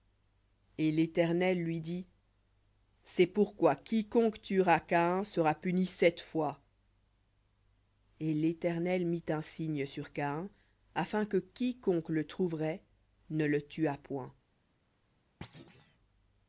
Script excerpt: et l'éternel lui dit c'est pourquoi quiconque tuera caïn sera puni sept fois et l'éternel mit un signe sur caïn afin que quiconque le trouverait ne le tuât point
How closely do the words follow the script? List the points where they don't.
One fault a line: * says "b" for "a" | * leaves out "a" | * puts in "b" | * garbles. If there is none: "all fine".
all fine